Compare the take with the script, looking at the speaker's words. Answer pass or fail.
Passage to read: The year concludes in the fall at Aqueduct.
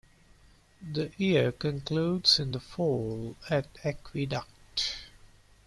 pass